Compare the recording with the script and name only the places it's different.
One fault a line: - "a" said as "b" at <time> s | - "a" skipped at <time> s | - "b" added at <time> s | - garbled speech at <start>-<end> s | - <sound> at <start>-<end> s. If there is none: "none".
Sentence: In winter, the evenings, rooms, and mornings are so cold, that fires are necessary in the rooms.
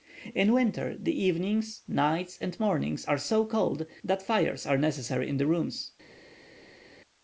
- "rooms" said as "nights" at 1.9 s